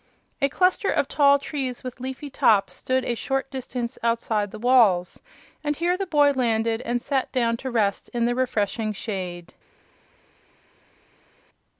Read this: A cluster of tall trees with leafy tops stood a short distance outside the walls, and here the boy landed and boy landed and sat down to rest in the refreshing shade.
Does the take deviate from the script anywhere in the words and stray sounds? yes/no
yes